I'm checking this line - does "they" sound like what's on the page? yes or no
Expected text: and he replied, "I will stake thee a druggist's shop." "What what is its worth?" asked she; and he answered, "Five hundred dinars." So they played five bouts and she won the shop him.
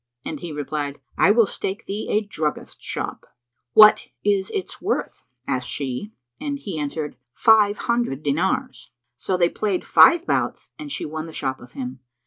yes